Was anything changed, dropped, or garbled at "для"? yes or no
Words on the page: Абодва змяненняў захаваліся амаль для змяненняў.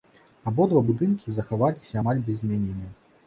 yes